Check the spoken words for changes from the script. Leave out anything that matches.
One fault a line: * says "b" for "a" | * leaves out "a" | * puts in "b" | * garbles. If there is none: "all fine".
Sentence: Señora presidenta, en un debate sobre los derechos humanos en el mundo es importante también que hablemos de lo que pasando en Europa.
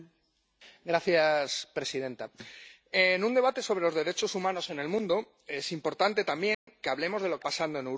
all fine